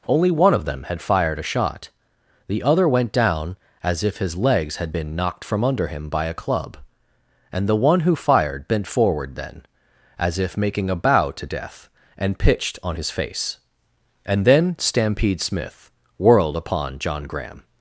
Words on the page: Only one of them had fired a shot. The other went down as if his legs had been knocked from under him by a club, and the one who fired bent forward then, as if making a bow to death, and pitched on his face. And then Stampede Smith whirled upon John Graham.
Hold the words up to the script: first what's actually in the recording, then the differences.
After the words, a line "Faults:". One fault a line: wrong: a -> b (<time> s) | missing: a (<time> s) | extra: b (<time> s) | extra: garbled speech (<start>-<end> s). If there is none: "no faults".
Only one of them had fired a shot. The other went down as if his legs had been knocked from under him by a club, and the one who fired bent forward then, as if making a bow to death, and pitched on his face. And then Stampede Smith whirled upon John Graham.
Faults:
no faults